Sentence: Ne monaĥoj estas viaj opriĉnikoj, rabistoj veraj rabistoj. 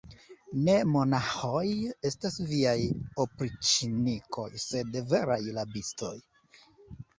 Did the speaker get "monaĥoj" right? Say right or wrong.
right